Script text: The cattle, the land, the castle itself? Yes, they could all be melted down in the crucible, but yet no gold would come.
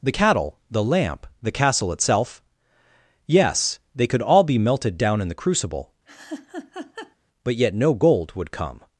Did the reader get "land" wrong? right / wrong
wrong